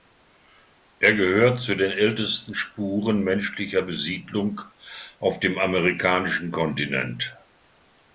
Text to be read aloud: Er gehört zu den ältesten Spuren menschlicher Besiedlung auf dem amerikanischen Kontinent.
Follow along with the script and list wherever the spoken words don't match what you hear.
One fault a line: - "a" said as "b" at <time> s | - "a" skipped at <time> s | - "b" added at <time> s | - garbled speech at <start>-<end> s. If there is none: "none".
none